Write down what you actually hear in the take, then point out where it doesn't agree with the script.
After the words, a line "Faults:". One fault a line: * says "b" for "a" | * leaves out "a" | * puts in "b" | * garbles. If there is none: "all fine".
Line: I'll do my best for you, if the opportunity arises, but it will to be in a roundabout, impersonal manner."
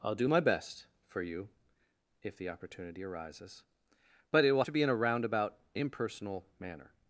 I'll do my best for you, if the opportunity arises, but it will to be in a roundabout, impersonal manner."
Faults:
all fine